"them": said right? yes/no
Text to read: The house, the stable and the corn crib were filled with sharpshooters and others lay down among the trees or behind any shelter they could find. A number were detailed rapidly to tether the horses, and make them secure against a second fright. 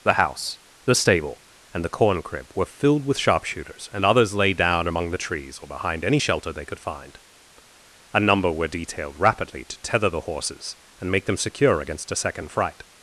yes